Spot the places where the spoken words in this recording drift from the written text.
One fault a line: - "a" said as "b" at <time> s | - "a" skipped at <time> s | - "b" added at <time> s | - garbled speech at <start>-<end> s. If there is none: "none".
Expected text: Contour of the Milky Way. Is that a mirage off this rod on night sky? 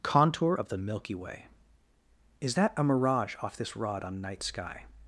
none